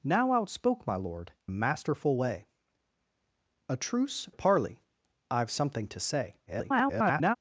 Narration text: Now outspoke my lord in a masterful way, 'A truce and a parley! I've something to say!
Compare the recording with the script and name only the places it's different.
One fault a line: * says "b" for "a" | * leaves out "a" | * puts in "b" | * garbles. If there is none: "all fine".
* leaves out "in"
* leaves out "and"
* garbles